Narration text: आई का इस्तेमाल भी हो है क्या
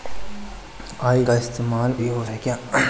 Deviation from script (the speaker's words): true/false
false